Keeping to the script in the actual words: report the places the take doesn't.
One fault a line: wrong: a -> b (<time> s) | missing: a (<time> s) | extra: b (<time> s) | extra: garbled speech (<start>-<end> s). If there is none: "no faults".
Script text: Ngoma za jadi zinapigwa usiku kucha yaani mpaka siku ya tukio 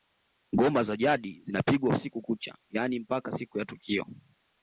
no faults